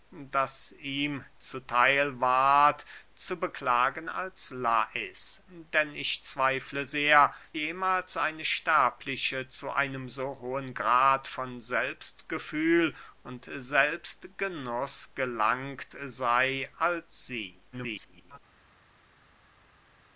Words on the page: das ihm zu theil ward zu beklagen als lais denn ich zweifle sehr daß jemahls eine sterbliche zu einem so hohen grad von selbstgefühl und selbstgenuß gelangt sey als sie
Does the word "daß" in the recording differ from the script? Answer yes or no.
yes